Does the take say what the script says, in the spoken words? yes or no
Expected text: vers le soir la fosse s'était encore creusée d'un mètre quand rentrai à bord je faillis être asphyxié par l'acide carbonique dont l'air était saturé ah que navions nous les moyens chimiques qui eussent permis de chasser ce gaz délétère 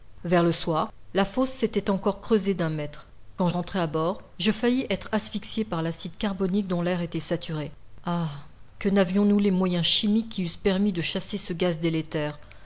yes